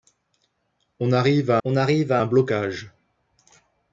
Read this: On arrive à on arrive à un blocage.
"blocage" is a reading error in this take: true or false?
false